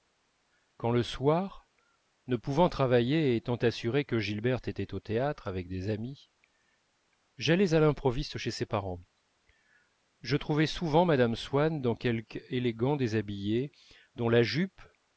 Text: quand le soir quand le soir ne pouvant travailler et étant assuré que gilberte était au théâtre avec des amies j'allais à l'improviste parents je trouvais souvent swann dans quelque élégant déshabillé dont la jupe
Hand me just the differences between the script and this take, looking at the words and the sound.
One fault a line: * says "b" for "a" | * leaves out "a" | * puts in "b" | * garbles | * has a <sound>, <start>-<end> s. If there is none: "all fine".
* leaves out "quand le soir"
* puts in "chez ses"
* puts in "mme"